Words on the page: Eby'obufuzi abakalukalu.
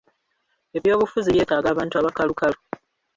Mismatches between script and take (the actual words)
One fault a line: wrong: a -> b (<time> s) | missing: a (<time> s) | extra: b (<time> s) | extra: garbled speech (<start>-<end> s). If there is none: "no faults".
extra: by'etaaga abantu (1.3 s)